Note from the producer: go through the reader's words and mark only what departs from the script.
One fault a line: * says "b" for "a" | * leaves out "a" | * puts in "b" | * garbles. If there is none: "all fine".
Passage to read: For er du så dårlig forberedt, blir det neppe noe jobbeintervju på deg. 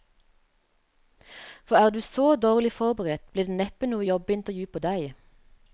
all fine